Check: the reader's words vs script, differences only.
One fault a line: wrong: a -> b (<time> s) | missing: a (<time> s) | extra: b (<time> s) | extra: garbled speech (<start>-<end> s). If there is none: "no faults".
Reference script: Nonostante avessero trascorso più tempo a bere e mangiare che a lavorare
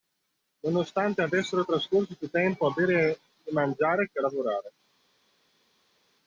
no faults